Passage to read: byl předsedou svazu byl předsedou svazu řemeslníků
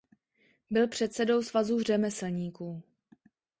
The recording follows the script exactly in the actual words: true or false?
false